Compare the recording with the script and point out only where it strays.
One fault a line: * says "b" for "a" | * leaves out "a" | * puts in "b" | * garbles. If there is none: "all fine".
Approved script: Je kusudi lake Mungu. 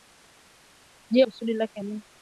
all fine